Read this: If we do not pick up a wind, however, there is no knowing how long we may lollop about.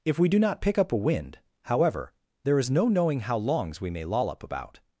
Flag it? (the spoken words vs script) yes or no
yes